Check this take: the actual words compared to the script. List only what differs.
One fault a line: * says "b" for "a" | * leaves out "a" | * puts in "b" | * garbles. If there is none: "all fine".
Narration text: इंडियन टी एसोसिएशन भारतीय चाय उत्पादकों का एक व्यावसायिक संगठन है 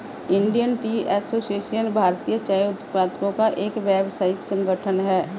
all fine